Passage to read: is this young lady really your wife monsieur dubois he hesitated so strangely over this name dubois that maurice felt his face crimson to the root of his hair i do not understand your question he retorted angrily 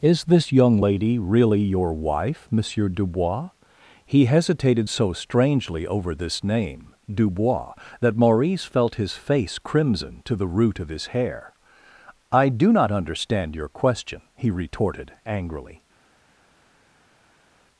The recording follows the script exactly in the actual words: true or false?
true